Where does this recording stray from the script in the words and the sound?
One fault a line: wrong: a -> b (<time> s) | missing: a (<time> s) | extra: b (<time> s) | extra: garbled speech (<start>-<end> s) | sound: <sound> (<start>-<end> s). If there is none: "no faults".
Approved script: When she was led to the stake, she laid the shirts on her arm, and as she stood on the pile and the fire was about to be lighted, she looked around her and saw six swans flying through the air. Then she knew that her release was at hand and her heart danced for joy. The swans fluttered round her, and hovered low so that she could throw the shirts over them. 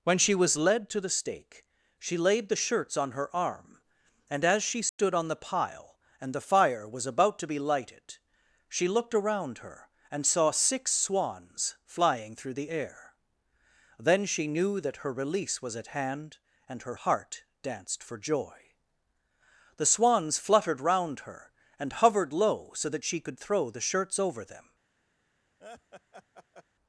sound: dropout (4.9-5.0 s)
sound: laugh (25.6-26.6 s)